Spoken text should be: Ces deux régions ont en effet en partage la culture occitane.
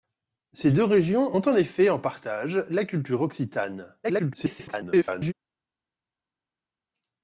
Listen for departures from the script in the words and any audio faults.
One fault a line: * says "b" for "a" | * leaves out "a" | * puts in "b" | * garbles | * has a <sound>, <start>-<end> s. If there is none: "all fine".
* garbles